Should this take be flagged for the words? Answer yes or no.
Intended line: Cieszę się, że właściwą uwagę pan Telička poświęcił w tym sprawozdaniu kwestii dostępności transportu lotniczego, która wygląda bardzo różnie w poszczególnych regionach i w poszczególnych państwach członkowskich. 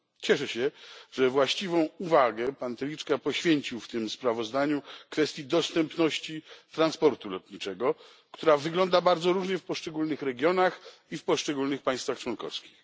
no